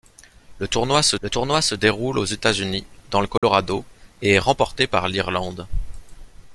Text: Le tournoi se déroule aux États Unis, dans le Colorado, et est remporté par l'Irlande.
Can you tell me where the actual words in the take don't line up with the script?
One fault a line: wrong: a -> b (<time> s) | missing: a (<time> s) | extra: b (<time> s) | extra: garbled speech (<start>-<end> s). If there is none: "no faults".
extra: le tournoi se (1.2 s)